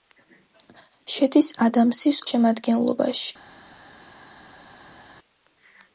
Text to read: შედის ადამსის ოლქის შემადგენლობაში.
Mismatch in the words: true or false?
true